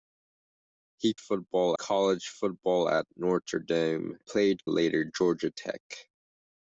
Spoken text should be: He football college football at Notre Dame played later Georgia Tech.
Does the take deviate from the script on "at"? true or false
false